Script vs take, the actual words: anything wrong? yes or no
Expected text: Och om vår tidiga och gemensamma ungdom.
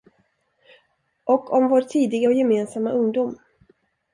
no